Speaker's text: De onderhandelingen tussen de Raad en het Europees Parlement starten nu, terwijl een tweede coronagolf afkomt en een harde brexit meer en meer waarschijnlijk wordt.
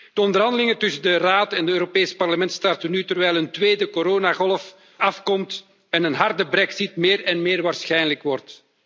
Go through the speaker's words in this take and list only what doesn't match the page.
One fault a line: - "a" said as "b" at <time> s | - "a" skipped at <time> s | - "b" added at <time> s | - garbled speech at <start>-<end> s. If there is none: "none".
none